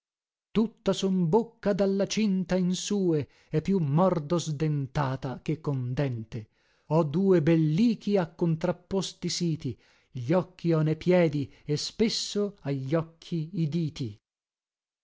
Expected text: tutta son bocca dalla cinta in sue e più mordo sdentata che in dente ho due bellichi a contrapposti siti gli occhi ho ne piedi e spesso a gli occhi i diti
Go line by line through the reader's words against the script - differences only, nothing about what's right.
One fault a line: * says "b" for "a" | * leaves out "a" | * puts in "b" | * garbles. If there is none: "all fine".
* says "con" for "in"